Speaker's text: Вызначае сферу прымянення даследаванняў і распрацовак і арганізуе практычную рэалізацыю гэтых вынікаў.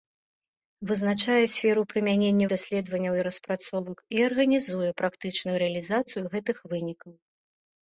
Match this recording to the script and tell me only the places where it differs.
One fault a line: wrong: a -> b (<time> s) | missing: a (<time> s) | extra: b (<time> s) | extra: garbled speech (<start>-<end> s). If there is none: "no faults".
no faults